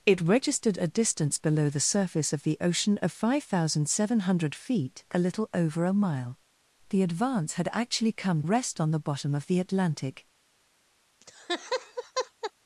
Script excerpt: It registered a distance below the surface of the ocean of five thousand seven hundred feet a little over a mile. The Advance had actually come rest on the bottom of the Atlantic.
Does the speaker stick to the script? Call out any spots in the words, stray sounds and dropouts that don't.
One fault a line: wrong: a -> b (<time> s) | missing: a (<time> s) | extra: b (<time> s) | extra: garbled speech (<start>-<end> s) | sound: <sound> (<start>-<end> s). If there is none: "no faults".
sound: laugh (11.2-12.5 s)